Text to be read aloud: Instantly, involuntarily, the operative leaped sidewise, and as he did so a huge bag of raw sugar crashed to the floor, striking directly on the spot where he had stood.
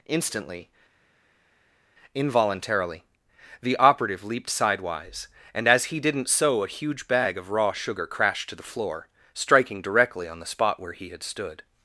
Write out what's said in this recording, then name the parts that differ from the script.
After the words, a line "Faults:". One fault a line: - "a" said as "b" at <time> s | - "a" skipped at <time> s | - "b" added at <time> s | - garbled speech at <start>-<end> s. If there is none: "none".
Instantly, involuntarily, the operative leaped sidewise, and as he didn't so a huge bag of raw sugar crashed to the floor, striking directly on the spot where he had stood.
Faults:
- "did" said as "didn't" at 6.0 s